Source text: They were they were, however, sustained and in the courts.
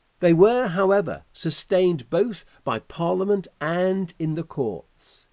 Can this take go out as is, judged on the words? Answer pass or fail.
fail